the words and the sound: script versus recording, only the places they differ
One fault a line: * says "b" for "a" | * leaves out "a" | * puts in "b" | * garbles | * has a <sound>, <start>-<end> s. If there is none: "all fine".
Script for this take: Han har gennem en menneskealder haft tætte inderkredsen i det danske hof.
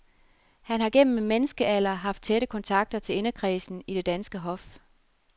* puts in "kontakter til"